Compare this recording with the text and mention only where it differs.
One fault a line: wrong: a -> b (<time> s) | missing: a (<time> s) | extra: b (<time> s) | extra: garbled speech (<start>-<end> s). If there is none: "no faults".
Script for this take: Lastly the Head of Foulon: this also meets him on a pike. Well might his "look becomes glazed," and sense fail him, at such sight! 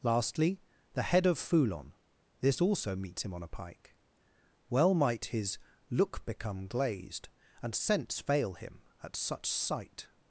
wrong: becomes -> become (6.2 s)